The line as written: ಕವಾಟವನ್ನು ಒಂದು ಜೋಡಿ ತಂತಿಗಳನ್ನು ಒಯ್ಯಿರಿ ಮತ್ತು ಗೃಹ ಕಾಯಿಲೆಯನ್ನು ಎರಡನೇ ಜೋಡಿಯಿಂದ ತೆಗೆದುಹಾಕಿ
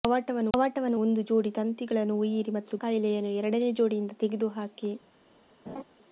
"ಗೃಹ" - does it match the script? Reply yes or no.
no